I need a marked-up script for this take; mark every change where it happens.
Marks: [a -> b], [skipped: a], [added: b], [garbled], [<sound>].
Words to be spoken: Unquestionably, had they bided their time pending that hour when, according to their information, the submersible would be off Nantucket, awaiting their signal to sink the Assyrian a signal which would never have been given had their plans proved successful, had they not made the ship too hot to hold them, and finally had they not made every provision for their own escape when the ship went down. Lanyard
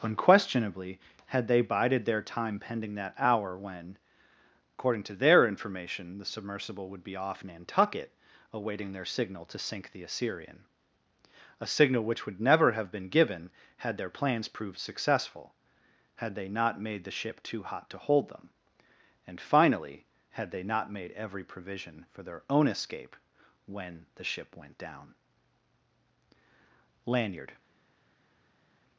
Unquestionably, had they bided their time pending that hour when, according to their information, the submersible would be off Nantucket, awaiting their signal to sink the Assyrian a signal which would never have been given had their plans proved successful, had they not made the ship too hot to hold them, and finally had they not made every provision for their own escape when the ship went down. Lanyard